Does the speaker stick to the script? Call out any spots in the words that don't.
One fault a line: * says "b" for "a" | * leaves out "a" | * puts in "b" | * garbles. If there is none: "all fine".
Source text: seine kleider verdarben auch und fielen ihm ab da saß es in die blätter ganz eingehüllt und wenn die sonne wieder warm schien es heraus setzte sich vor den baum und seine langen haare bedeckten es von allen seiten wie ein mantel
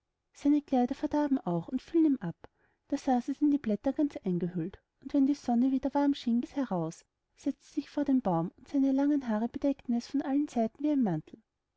all fine